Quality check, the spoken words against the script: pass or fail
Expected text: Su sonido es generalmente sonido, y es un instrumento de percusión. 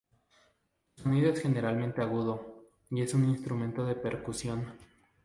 fail